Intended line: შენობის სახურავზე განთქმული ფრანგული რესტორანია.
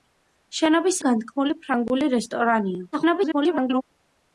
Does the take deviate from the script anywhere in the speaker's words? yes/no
yes